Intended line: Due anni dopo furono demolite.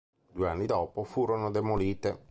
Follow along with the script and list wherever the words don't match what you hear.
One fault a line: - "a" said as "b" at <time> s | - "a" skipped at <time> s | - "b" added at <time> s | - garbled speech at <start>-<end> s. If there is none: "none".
none